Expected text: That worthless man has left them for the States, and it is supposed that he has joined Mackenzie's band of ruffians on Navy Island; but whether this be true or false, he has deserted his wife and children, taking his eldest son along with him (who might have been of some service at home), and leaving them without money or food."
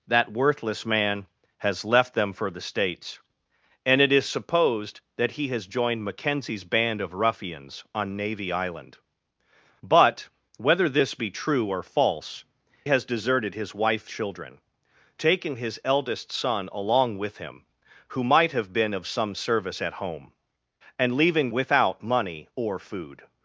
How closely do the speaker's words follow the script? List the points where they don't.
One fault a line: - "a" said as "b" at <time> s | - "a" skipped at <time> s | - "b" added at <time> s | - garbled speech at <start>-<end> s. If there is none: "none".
- "he" skipped at 12.4 s
- "and" skipped at 14.1 s
- "them" skipped at 21.5 s